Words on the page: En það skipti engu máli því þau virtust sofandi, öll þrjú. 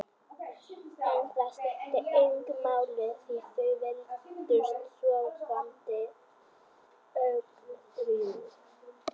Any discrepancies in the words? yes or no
no